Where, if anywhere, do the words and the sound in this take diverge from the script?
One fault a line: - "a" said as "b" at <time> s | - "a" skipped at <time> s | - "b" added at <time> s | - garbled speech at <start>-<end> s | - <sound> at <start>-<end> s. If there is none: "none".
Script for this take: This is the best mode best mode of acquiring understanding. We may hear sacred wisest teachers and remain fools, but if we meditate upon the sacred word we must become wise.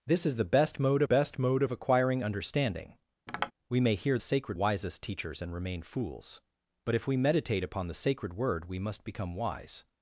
- tap at 3.3-3.5 s